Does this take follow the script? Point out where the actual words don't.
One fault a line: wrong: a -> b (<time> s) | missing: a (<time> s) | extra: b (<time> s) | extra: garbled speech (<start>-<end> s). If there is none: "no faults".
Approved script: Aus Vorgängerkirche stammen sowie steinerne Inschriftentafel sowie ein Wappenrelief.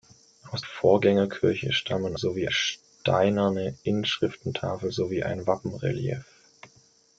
no faults